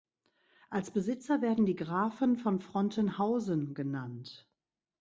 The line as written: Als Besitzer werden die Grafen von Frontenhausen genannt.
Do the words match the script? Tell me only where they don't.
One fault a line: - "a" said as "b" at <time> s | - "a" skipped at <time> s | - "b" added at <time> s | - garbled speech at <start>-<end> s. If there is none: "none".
none